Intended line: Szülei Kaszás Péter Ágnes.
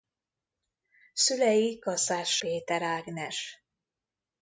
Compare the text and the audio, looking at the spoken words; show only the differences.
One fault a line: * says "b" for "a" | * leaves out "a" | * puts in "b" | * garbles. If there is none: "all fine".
all fine